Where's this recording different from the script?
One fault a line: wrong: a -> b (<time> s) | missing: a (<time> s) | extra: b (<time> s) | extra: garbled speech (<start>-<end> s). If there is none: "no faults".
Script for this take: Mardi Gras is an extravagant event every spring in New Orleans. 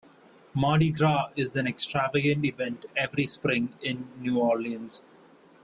no faults